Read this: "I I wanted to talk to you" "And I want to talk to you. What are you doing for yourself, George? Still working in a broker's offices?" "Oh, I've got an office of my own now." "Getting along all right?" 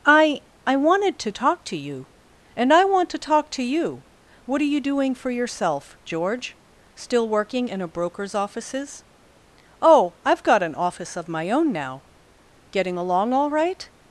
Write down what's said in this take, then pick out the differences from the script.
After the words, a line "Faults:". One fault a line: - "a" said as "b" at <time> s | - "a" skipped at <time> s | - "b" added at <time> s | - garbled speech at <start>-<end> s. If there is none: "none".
"I I wanted to talk to you" "And I want to talk to you. What are you doing for yourself, George? Still working in a broker's offices?" "Oh, I've got an office of my own now." "Getting along all right?"
Faults:
none